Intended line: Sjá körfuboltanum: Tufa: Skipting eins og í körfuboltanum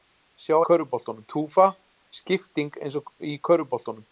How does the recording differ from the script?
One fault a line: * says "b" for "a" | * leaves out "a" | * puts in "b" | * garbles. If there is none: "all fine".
all fine